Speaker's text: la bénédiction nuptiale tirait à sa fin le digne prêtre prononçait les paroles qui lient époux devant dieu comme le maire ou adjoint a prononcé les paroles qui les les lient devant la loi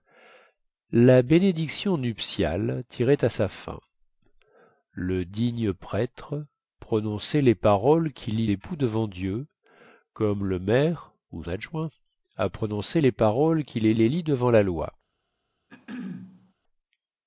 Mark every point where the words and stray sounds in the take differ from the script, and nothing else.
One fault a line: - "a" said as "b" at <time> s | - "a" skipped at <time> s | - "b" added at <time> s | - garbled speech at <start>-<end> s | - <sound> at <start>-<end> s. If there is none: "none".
- throat clearing at 15.7-16.5 s